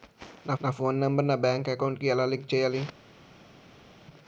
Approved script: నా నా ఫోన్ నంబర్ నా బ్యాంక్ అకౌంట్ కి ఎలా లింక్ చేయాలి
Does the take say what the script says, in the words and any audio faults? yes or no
yes